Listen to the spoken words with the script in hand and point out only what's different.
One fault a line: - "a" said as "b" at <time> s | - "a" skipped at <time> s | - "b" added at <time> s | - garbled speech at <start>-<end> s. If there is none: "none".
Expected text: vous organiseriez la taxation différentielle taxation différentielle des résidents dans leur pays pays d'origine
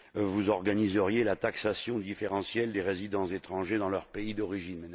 - "taxation différentielle" skipped at 2.7 s
- "étrangers" added at 3.3 s
- "pays" skipped at 4.3 s